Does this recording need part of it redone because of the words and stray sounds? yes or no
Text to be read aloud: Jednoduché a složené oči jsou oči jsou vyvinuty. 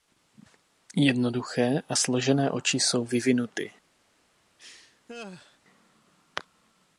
yes